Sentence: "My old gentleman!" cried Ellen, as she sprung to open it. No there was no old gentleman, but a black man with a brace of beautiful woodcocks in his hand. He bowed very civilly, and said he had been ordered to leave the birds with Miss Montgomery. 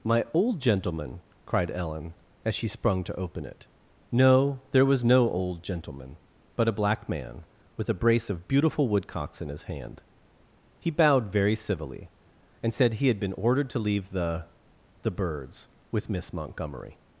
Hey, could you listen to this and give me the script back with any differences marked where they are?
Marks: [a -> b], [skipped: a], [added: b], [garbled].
"My old gentleman!" cried Ellen, as she sprung to open it. No there was no old gentleman, but a black man with a brace of beautiful woodcocks in his hand. He bowed very civilly, and said he had been ordered to leave the [added: the] birds with Miss Montgomery.